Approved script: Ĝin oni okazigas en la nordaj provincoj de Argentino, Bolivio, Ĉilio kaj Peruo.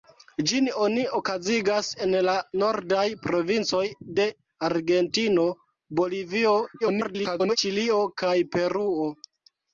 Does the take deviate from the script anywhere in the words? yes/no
yes